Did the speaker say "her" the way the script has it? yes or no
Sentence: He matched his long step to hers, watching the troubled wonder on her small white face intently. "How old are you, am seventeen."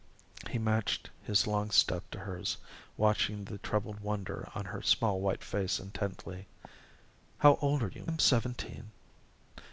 yes